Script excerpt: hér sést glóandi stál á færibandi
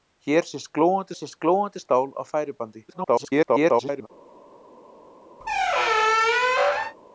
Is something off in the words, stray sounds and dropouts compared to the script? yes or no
yes